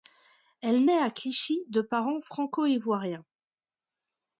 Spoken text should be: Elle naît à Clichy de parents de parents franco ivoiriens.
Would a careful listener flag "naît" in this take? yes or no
no